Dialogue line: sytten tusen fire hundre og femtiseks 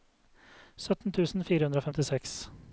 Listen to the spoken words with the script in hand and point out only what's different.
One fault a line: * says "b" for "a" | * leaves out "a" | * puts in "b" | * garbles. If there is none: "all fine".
all fine